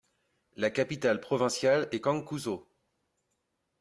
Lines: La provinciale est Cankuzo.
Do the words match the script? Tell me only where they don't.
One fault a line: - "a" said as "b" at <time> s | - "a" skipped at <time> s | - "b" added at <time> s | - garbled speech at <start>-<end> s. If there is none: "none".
- "capitale" added at 0.7 s